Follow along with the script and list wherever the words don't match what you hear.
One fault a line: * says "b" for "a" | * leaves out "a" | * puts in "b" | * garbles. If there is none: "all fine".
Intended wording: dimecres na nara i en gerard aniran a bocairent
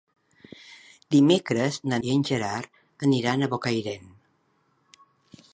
* leaves out "nara"